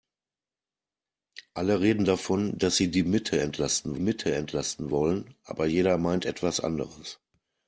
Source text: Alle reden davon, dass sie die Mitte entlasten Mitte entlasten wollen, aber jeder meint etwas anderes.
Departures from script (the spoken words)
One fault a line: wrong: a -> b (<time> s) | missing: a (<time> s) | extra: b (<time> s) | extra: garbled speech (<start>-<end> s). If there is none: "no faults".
no faults